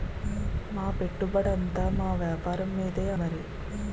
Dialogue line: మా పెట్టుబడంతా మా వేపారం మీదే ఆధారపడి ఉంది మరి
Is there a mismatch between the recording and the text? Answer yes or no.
yes